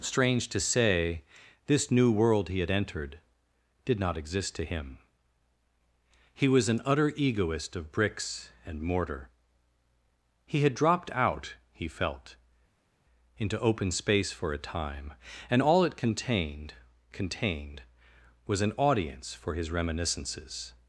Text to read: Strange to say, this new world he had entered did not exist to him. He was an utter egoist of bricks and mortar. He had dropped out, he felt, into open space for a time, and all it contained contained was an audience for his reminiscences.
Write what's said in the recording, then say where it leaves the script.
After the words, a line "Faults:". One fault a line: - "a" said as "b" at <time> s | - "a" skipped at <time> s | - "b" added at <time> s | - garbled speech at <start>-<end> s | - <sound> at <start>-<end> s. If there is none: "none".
Strange to say, this new world he had entered did not exist to him. He was an utter egoist of bricks and mortar. He had dropped out, he felt, into open space for a time, and all it contained contained was an audience for his reminiscences.
Faults:
none